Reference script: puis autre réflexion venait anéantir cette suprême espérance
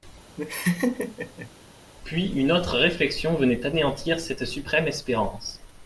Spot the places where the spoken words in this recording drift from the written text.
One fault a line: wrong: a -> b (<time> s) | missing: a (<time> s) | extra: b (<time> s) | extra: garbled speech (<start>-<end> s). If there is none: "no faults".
extra: une (2.3 s)